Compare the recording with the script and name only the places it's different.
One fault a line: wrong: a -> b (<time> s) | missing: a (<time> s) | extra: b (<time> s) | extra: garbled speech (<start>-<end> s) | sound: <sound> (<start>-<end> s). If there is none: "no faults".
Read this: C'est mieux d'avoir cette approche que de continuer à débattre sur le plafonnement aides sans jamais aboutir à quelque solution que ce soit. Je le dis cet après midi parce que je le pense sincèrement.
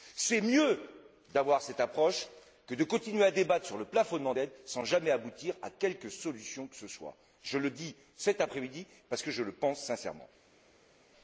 no faults